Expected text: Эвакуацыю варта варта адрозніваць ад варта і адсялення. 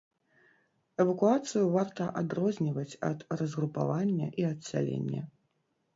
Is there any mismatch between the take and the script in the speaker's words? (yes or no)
yes